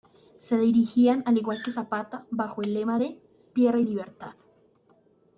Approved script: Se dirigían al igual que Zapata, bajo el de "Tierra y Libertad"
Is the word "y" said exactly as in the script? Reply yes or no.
yes